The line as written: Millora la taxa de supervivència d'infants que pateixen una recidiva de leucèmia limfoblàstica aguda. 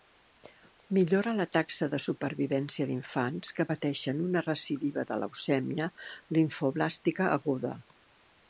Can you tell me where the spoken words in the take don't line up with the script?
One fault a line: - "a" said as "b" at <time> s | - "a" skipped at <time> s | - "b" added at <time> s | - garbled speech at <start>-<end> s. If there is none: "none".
none